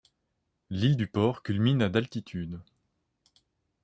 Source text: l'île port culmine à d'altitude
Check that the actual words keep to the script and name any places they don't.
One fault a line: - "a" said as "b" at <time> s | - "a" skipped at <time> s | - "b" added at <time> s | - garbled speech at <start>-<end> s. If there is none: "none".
- "du" added at 0.9 s